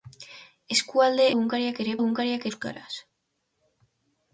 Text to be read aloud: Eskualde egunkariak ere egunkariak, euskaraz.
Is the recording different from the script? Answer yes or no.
no